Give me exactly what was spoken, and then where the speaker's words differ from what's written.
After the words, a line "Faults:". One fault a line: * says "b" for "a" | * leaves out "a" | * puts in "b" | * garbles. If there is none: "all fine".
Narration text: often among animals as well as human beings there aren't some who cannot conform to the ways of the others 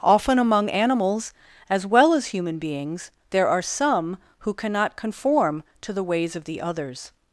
often among animals as well as human beings there are some who cannot conform to the ways of the others
Faults:
* says "are" for "aren't"